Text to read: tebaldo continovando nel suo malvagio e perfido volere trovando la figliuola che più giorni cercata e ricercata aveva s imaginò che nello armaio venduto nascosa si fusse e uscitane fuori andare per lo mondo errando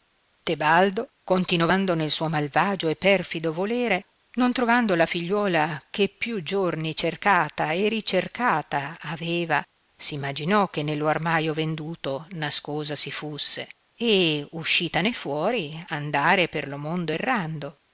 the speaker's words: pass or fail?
fail